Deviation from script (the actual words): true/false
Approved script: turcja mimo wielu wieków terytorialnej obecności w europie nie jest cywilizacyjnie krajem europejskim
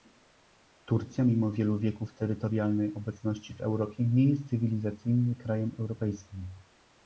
false